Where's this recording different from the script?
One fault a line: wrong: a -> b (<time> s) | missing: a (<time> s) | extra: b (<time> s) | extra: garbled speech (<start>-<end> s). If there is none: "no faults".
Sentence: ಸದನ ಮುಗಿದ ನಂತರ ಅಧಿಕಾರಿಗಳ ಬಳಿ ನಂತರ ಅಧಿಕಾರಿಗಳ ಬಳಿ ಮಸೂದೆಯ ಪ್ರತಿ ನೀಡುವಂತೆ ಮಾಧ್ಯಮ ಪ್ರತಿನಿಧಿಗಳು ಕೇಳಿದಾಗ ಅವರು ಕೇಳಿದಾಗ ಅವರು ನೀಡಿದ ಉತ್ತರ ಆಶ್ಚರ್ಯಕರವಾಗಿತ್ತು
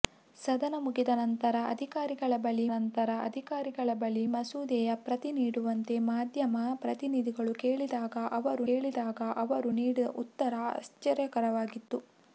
no faults